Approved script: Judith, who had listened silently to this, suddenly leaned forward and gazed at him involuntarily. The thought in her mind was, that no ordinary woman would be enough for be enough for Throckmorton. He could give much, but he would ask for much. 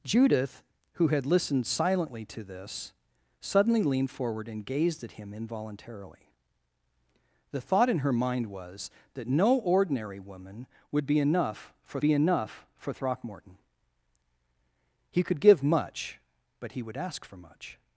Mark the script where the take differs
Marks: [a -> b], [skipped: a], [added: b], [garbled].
Judith, who had listened silently to this, suddenly leaned forward and gazed at him involuntarily. The thought in her mind was, that no ordinary woman would be enough for be enough for Throckmorton. He could give much, but he would ask for much.